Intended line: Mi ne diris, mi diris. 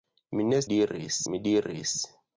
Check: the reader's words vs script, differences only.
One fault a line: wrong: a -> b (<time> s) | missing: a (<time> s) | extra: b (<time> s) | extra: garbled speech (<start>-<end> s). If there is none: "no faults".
no faults